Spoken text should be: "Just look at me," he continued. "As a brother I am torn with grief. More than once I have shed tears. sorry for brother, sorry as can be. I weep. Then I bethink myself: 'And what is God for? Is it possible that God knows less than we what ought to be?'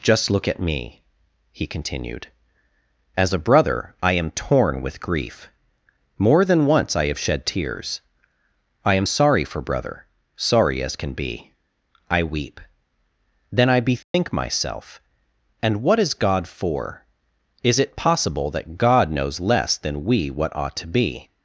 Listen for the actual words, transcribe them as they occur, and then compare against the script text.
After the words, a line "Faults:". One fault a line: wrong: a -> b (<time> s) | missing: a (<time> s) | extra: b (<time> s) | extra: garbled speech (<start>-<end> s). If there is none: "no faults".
"Just look at me," he continued. "As a brother I am torn with grief. More than once I have shed tears. I am sorry for brother, sorry as can be. I weep. Then I bethink myself: 'And what is God for? Is it possible that God knows less than we what ought to be?'
Faults:
extra: I am (8.8 s)